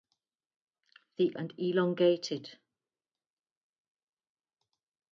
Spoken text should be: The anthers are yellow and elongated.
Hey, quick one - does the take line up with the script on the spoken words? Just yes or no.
no